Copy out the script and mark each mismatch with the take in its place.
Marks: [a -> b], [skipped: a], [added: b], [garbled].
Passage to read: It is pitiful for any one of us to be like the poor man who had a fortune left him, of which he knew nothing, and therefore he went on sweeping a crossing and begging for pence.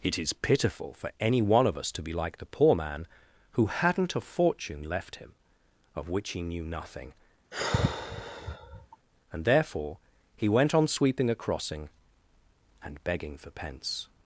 It is pitiful for any one of us to be like the poor man who [had -> hadn't] a fortune left him, of which he knew nothing, and therefore he went on sweeping a crossing and begging for pence.